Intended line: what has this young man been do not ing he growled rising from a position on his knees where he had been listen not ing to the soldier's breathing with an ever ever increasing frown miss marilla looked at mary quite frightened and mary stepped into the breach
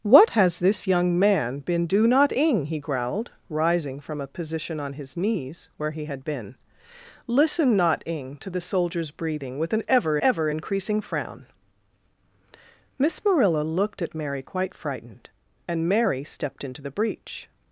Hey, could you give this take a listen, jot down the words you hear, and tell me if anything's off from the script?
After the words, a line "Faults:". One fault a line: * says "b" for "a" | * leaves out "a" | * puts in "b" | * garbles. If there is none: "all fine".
what has this young man been do not ing he growled rising from a position on his knees where he had been listen not ing to the soldier's breathing with an ever ever increasing frown miss marilla looked at mary quite frightened and mary stepped into the breach
Faults:
all fine